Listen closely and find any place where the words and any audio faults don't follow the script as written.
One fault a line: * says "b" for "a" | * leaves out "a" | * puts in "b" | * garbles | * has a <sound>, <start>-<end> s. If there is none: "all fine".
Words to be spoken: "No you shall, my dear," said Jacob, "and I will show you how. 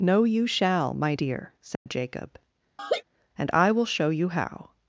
* has a dropout, 1.7-1.9 s
* has a laugh, 2.8-3.0 s